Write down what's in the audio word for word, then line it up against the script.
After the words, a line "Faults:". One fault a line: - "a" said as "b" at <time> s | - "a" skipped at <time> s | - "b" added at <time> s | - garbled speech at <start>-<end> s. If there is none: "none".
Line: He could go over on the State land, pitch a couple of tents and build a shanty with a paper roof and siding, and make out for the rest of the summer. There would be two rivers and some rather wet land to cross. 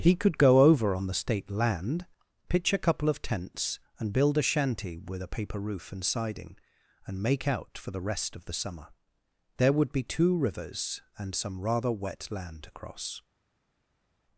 He could go over on the State land, pitch a couple of tents and build a shanty with a paper roof and siding, and make out for the rest of the summer. There would be two rivers and some rather wet land to cross.
Faults:
none